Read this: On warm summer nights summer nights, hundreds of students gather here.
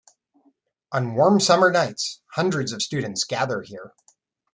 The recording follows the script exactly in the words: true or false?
false